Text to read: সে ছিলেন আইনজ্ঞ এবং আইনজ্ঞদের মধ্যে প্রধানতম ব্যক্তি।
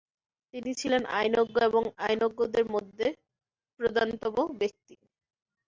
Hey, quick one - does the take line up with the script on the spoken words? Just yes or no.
no